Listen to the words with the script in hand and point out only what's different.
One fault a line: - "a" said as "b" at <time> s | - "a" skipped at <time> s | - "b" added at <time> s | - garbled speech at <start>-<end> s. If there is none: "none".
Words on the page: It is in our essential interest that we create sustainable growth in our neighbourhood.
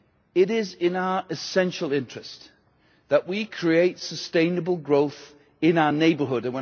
none